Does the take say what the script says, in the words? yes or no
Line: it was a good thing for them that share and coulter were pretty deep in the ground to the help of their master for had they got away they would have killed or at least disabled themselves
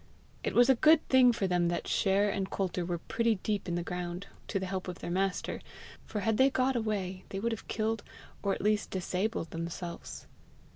yes